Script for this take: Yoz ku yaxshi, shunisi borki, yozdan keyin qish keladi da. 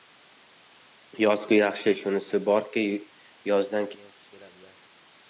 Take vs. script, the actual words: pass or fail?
pass